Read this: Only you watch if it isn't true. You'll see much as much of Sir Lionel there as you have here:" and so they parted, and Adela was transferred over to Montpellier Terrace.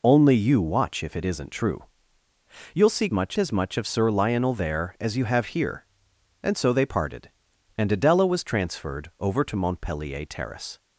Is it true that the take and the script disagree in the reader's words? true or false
false